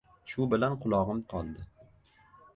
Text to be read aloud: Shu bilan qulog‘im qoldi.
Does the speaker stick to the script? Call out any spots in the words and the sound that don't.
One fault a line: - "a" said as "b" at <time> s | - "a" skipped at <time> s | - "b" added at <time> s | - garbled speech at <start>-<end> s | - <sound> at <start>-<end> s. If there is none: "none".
none